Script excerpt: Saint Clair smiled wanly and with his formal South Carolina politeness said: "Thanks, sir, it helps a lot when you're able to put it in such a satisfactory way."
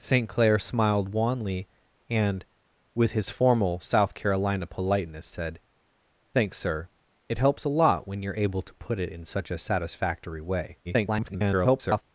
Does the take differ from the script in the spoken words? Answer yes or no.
yes